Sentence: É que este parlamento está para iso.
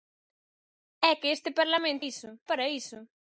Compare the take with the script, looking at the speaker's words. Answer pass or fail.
fail